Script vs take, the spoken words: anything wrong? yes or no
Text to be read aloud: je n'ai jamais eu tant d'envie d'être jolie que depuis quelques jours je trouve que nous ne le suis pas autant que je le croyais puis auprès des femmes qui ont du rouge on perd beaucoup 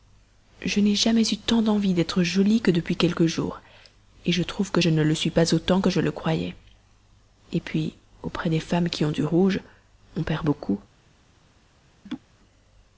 yes